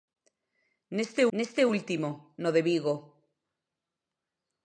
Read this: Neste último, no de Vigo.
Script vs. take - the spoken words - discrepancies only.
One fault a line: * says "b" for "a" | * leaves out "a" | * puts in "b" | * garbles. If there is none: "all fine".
* puts in "neste"